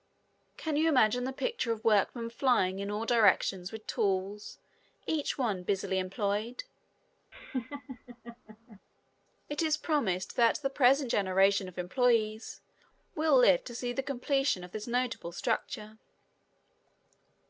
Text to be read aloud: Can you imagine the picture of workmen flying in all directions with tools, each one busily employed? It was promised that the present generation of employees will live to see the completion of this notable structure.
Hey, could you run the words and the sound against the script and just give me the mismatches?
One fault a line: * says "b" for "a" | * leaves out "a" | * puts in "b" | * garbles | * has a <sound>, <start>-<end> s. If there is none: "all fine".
* has a laugh, 7.3-8.8 s
* says "is" for "was"